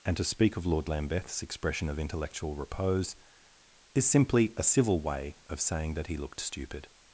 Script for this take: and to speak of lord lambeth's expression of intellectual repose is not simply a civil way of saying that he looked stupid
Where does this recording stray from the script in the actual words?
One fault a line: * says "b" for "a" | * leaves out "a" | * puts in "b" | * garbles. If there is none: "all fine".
* leaves out "not"